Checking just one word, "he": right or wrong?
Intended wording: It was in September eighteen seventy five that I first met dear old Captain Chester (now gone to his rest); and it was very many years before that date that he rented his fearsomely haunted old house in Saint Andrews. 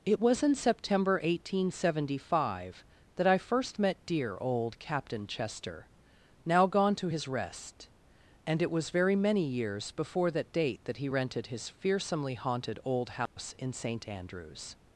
right